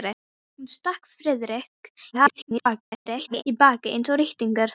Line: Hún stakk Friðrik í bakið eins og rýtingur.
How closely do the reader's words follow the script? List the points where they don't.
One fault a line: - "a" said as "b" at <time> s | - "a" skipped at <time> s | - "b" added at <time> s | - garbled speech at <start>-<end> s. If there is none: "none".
- garbled speech at 2.1-3.4 s